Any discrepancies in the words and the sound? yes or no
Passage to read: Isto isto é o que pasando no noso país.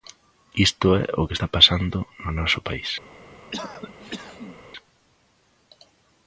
yes